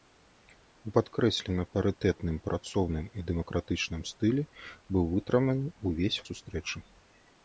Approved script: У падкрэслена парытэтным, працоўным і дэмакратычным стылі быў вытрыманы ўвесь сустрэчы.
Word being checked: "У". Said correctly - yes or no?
yes